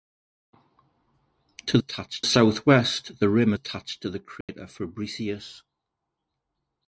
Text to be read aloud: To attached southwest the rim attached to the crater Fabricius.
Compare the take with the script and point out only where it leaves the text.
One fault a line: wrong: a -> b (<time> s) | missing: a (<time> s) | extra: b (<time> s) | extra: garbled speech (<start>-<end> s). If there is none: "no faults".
no faults